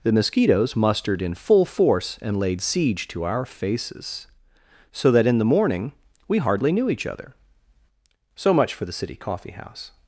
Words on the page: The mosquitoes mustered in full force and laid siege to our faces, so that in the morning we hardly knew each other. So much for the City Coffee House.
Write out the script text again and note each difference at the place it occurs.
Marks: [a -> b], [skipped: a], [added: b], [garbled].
The mosquitoes mustered in full force and laid siege to our faces, so that in the morning we hardly knew each other. So much for the City Coffee House.